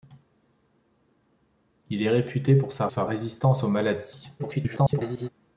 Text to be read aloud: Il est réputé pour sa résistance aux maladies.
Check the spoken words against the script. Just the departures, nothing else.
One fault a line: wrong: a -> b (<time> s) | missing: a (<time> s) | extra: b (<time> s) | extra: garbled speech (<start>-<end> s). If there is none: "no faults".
extra: sa (2.9 s)
extra: garbled speech (4.4-5.3 s)